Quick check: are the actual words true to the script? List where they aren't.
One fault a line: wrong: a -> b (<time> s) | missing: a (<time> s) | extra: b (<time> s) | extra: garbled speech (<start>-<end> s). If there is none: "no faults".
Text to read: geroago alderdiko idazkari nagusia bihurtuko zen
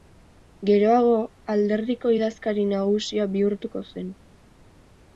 no faults